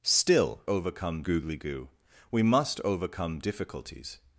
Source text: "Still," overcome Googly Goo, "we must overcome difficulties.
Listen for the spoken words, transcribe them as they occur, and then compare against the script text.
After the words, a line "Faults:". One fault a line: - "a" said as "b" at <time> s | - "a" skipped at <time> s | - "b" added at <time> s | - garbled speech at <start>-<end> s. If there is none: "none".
"Still," overcome Googly Goo, "we must overcome difficulties.
Faults:
none